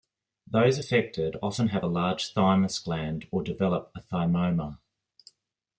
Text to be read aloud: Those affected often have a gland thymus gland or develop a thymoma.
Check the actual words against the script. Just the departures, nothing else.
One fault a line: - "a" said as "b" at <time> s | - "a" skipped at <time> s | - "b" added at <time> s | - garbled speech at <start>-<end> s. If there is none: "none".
- "gland" said as "large" at 1.9 s